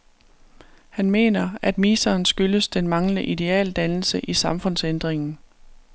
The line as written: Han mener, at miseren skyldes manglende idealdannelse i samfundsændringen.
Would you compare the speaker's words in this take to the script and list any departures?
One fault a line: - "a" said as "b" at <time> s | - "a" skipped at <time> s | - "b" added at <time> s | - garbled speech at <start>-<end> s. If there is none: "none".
- "den" added at 2.7 s